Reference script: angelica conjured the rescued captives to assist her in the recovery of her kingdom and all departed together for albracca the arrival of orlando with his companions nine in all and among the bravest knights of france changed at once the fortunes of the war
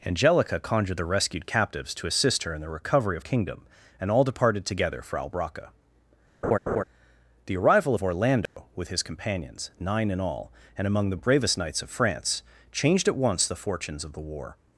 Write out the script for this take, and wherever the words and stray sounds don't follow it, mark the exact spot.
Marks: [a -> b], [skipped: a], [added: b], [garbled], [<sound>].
angelica conjured the rescued captives to assist her in the recovery of [skipped: her] kingdom and all departed together for albracca [laugh] the arrival of orlando [dropout] with his companions nine in all and among the bravest knights of france changed at once the fortunes of the war